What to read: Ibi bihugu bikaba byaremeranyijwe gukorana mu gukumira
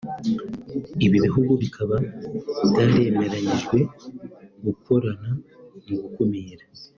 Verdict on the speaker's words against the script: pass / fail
pass